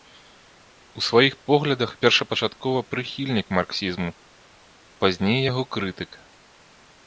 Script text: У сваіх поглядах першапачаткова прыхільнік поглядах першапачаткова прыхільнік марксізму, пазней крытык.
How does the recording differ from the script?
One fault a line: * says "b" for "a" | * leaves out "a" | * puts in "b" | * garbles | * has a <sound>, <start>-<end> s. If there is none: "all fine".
* leaves out "поглядах першапачаткова прыхільнік"
* puts in "яго"